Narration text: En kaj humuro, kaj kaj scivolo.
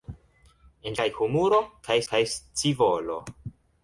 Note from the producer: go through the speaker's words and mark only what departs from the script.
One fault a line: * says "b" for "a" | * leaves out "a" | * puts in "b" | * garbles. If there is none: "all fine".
all fine